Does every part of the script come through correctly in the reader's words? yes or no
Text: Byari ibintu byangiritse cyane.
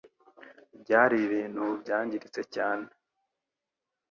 yes